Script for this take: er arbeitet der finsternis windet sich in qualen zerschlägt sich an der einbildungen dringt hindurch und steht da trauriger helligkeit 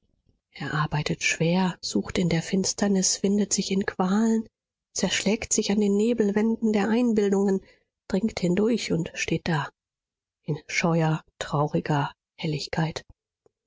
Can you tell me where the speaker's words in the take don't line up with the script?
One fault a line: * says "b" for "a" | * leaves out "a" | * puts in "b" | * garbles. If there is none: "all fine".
* puts in "schwer sucht in"
* puts in "den nebelwänden"
* puts in "in scheuer"